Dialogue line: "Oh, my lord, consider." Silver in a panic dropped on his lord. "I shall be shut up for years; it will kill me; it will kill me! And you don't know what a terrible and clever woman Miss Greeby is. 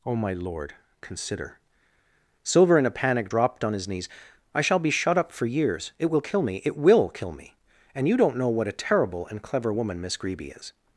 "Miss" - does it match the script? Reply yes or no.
yes